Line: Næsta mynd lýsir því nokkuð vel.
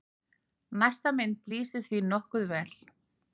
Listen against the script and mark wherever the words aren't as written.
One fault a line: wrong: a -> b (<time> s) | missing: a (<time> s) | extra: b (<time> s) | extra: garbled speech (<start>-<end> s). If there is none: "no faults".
no faults